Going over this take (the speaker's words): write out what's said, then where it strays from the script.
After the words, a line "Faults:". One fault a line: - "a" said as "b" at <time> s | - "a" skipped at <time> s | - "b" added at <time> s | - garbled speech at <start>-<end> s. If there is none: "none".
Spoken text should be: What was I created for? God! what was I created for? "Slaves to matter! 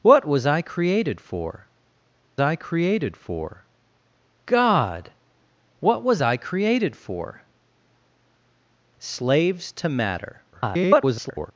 What was I created for I created for? God! what was I created for? "Slaves to matter! [garbled]
Faults:
- "I created for" added at 2.4 s
- garbled speech at 10.5-11.5 s